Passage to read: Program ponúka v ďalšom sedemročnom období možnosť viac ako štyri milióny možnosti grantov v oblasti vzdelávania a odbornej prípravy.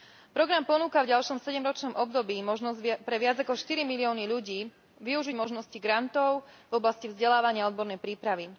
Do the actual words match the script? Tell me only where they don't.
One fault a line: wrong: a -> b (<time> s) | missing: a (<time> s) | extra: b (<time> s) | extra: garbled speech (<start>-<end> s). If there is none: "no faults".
extra: pre (3.0 s)
extra: ľudí využiť (4.2 s)